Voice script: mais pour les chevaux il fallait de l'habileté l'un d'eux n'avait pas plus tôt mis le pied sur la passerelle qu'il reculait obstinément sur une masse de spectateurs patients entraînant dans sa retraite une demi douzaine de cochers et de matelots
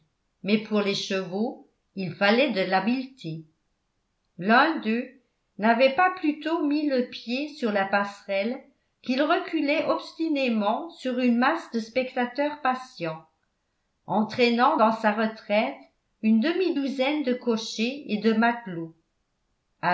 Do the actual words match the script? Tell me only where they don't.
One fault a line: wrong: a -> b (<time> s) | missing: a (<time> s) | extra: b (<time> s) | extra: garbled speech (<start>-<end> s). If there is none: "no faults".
no faults